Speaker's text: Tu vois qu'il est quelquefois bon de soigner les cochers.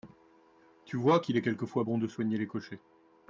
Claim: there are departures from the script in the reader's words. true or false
false